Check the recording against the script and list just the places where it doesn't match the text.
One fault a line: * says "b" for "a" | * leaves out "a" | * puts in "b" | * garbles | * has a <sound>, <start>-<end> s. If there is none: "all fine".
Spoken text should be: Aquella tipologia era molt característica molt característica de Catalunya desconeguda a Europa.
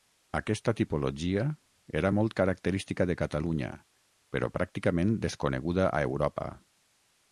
* says "Aquesta" for "Aquella"
* says "de Catalunya però pràcticament" for "molt característica de Catalunya"